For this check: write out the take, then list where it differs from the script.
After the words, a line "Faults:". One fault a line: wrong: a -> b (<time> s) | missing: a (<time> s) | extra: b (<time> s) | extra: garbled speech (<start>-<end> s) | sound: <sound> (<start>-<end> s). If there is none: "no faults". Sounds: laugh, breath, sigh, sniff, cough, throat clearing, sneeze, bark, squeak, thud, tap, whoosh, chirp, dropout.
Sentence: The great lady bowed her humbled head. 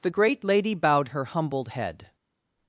The great lady bowed her humbled head.
Faults:
no faults